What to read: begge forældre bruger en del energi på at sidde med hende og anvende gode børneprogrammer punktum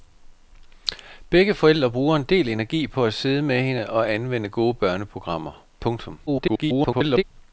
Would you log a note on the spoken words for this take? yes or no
yes